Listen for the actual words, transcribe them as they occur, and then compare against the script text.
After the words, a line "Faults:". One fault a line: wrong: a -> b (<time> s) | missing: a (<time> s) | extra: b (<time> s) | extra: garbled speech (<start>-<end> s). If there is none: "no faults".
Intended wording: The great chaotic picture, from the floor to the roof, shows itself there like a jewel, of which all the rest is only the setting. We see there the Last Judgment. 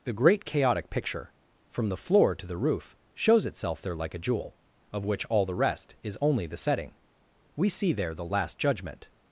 The great chaotic picture, from the floor to the roof, shows itself there like a jewel, of which all the rest is only the setting. We see there the Last Judgment.
Faults:
no faults